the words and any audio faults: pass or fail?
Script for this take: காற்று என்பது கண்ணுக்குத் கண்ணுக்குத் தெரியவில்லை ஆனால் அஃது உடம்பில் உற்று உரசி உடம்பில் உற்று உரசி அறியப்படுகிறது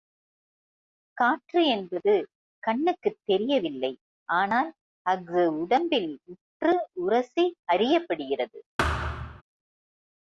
fail